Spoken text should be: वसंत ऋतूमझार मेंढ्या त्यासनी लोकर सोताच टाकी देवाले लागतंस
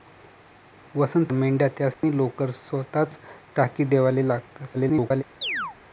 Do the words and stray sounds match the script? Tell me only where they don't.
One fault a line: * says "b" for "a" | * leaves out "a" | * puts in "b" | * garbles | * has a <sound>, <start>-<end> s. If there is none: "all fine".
* leaves out "ऋतूमझार"
* has a dropout, 1.9-2.0 s
* garbles
* has a chirp, 5.4-5.8 s